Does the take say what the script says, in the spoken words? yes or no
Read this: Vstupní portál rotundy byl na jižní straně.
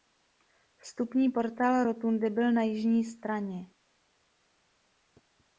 yes